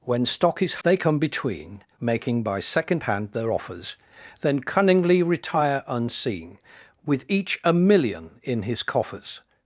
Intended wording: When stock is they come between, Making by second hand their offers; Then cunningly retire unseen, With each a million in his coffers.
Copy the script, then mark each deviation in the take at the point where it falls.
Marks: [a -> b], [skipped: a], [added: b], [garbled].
When stock is they come between, Making by second hand their offers; Then cunningly retire unseen, With each a million in his coffers.